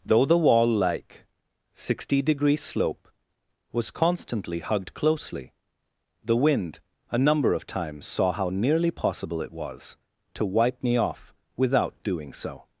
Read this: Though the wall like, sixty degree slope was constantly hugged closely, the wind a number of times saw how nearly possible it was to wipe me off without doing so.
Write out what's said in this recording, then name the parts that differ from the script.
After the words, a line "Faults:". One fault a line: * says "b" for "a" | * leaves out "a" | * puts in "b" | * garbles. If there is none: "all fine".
Though the wall like, sixty degree slope was constantly hugged closely, the wind a number of times saw how nearly possible it was to wipe me off without doing so.
Faults:
all fine